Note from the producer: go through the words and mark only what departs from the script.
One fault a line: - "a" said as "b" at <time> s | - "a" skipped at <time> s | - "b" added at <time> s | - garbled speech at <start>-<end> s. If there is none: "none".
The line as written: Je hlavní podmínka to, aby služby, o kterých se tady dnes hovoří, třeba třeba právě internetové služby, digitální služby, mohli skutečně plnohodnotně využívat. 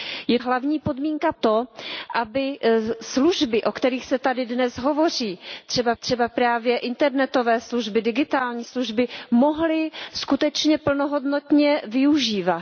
none